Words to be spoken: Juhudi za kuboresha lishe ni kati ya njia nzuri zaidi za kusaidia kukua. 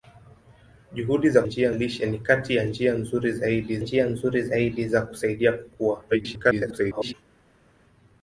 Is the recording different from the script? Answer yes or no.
yes